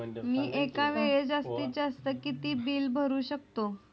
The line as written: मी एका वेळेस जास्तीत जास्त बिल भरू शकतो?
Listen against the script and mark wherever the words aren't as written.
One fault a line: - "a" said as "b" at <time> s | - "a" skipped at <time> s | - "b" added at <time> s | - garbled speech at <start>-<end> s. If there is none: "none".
- "किती" added at 2.2 s